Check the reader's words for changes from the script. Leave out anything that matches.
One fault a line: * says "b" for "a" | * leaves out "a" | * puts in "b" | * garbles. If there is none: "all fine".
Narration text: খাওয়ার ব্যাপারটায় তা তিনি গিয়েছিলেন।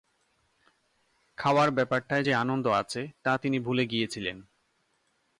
* puts in "যে আনন্দ আছে"
* puts in "ভুলে"